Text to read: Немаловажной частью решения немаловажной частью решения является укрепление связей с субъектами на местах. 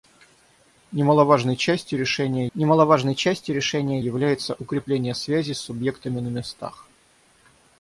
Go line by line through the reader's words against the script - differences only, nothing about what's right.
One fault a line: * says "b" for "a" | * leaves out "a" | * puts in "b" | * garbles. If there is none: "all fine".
all fine